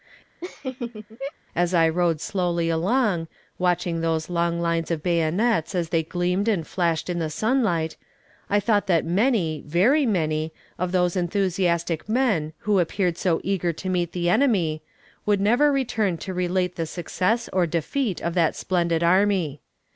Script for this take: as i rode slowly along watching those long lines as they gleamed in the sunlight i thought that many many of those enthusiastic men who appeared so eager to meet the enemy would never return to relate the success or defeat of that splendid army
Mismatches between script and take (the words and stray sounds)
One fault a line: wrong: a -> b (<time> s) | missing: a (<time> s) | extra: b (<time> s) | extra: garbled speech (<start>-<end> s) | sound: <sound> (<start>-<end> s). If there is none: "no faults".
sound: laugh (0.4-1.3 s)
extra: of bayonets (4.9 s)
extra: and flashed (6.5 s)
extra: very (9.7 s)